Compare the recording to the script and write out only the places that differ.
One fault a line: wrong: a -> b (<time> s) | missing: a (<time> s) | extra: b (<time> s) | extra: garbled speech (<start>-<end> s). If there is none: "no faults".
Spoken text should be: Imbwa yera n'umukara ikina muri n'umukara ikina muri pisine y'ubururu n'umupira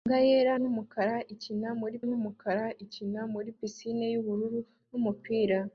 no faults